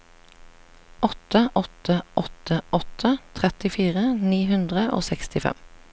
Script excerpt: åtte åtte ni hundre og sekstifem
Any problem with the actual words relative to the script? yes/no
yes